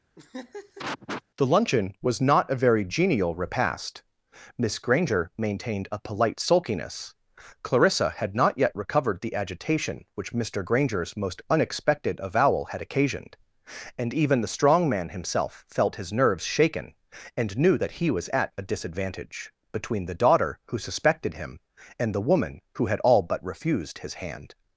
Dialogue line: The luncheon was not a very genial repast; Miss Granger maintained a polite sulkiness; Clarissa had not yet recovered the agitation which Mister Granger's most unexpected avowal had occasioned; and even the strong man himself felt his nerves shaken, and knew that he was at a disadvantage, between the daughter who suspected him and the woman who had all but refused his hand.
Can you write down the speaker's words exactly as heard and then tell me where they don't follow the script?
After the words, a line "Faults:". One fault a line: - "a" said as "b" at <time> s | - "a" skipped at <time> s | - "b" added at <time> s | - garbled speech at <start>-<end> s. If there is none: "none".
The luncheon was not a very genial repast; Miss Granger maintained a polite sulkiness; Clarissa had not yet recovered the agitation which Mister Granger's most unexpected avowal had occasioned; and even the strong man himself felt his nerves shaken, and knew that he was at a disadvantage, between the daughter who suspected him and the woman who had all but refused his hand.
Faults:
none